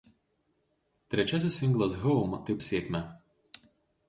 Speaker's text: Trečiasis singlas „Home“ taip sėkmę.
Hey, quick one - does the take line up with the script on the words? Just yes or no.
yes